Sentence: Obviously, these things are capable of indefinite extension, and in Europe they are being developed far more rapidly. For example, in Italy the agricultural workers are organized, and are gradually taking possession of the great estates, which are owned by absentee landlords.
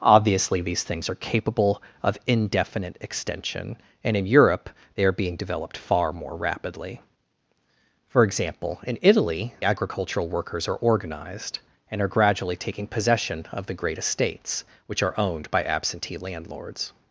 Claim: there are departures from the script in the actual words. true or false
true